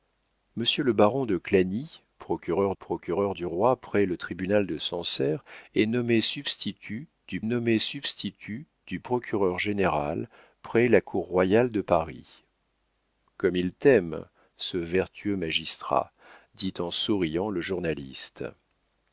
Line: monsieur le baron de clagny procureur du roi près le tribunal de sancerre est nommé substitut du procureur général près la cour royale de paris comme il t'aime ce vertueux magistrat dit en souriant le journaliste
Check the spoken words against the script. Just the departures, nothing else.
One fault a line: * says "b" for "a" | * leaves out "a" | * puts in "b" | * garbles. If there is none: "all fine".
* puts in "procureur"
* puts in "nommé substitut du"